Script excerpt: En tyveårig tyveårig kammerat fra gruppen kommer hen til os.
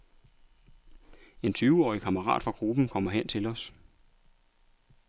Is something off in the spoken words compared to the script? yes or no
yes